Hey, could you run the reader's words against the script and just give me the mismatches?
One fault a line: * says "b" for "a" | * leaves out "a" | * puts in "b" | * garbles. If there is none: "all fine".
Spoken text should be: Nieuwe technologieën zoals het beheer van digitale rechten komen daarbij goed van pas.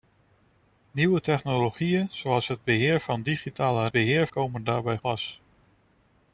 * says "beheer" for "rechten"
* leaves out "goed van"